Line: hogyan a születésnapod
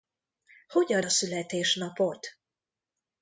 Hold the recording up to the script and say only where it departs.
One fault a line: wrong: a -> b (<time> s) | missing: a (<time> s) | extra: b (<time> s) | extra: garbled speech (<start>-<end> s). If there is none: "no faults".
no faults